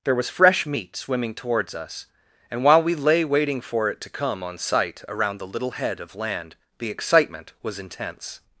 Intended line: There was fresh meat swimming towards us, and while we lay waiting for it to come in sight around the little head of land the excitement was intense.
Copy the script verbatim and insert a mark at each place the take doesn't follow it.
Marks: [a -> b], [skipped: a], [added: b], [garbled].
There was fresh meat swimming towards us, and while we lay waiting for it to come [in -> on] sight around the little head of land the excitement was intense.